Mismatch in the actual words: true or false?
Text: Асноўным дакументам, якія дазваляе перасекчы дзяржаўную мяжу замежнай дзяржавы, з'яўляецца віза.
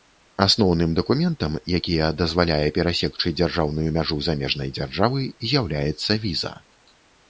false